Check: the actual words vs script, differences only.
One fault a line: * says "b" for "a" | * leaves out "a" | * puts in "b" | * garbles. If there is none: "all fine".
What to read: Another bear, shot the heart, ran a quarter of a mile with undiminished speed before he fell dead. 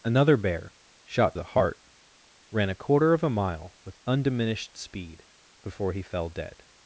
all fine